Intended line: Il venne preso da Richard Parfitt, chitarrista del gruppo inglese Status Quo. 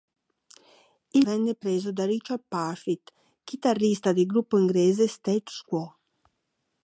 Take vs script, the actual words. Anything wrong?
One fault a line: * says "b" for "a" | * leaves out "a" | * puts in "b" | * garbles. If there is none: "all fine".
all fine